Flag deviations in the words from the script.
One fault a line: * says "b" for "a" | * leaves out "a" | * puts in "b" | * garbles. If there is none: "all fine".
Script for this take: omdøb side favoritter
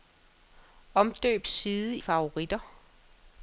all fine